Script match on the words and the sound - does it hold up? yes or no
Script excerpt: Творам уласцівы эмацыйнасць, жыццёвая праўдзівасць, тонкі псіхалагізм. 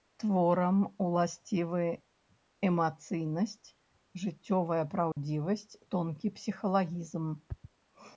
no